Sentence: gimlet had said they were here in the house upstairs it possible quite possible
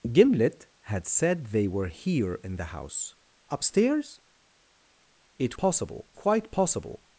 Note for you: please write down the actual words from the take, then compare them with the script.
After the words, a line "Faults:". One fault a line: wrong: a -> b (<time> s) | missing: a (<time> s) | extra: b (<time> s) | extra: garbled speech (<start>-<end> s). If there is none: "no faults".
gimlet had said they were here in the house upstairs it possible quite possible
Faults:
no faults